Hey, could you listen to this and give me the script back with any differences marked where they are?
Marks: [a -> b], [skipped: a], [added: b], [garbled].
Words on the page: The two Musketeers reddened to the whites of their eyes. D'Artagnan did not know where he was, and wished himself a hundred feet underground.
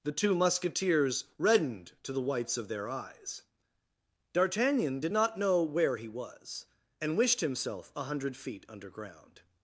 The two Musketeers reddened to the whites of their eyes. D'Artagnan did not know where he was, and wished himself a hundred feet underground.